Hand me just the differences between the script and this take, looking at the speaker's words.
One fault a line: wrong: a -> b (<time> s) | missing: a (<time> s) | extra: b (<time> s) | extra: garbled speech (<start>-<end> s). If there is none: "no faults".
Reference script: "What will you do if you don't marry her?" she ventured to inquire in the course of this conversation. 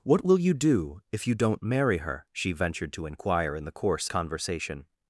missing: of this (4.1 s)